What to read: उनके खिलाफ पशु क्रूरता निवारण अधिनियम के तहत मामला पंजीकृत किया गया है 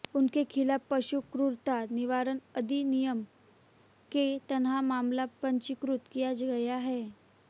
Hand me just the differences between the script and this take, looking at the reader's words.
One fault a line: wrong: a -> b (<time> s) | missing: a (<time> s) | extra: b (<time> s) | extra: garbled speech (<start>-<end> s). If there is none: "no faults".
no faults